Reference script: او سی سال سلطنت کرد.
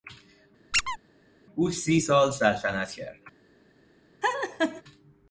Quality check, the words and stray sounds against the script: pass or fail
fail